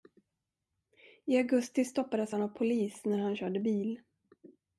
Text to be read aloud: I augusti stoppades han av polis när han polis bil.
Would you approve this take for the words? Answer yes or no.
no